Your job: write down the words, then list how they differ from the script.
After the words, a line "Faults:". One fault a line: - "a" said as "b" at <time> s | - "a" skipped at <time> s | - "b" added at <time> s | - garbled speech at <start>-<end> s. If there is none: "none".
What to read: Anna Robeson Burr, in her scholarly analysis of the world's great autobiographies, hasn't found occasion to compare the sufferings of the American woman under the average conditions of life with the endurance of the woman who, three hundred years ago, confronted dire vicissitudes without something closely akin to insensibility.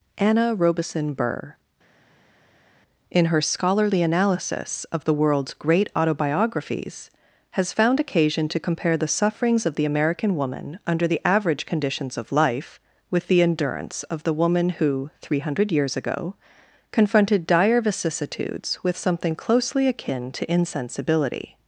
Anna Robeson Burr, in her scholarly analysis of the world's great autobiographies, has found occasion to compare the sufferings of the American woman under the average conditions of life with the endurance of the woman who, three hundred years ago, confronted dire vicissitudes with something closely akin to insensibility.
Faults:
- "hasn't" said as "has" at 7.5 s
- "without" said as "with" at 18.8 s